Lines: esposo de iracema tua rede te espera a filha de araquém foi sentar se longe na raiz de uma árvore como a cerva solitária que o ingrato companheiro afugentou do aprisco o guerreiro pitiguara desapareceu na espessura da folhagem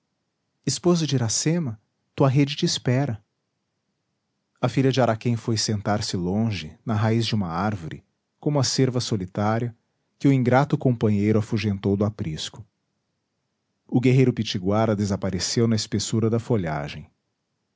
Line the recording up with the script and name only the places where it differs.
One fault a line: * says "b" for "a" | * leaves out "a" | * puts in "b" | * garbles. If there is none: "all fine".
all fine